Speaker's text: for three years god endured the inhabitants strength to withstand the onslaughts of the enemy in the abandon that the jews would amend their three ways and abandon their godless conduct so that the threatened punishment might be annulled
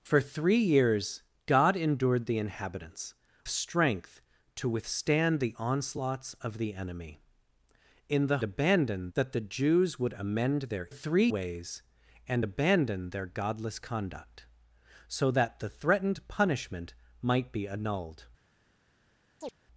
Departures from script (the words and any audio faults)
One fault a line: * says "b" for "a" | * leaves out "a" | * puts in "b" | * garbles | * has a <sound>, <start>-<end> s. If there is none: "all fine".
* has a chirp, 19.4-19.5 s